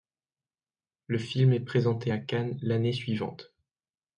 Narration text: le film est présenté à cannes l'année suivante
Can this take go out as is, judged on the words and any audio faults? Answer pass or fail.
pass